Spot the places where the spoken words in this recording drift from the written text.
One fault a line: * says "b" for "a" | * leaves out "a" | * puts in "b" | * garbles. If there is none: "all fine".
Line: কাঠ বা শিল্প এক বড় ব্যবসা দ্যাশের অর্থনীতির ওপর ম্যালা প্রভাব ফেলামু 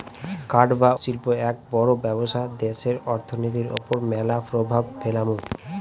all fine